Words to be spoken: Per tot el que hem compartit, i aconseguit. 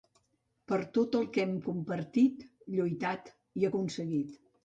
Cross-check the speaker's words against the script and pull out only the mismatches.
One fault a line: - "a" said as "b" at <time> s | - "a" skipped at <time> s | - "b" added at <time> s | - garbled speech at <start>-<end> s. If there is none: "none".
- "lluitat" added at 2.8 s